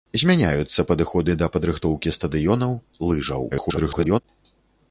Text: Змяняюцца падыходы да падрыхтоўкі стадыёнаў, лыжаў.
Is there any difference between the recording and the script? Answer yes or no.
yes